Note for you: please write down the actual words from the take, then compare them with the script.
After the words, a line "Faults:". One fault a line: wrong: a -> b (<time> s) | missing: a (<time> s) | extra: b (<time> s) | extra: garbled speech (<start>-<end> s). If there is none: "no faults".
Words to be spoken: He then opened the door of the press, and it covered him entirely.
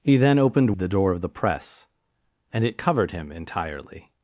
He then opened the door of the press, and it covered him entirely.
Faults:
no faults